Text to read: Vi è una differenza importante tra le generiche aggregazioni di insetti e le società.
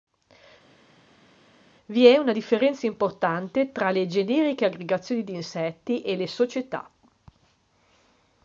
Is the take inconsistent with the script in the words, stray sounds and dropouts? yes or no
no